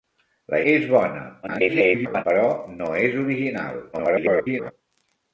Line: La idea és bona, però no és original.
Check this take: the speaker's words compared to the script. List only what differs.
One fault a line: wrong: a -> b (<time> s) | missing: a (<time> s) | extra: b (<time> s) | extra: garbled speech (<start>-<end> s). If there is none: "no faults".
missing: idea (0.6 s)
extra: garbled speech (1.4-2.2 s)
extra: garbled speech (3.9-4.7 s)